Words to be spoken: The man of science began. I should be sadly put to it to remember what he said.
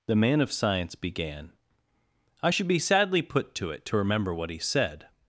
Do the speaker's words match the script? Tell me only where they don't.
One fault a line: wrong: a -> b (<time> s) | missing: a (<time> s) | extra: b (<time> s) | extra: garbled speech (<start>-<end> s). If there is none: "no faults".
no faults